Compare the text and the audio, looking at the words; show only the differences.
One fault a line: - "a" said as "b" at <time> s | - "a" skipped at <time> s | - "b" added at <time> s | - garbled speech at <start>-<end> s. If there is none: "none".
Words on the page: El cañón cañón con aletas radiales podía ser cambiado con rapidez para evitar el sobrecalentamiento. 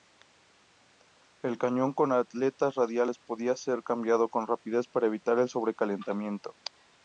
- "cañón" skipped at 1.9 s